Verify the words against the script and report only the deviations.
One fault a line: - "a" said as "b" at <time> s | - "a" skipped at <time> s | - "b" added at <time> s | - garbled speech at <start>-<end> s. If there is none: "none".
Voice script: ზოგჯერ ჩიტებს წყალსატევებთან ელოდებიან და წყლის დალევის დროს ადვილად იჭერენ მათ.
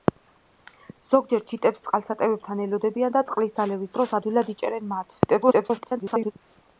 - garbled speech at 5.3-6.3 s